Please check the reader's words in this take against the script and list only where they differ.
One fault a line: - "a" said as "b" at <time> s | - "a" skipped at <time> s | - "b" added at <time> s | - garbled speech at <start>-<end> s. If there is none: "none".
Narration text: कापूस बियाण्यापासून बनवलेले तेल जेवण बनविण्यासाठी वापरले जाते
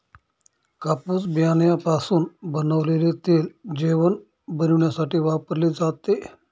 none